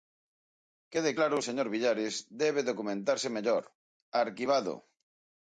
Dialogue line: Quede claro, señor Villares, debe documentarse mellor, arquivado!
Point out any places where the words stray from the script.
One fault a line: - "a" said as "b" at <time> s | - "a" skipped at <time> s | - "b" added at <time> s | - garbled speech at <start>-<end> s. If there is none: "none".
none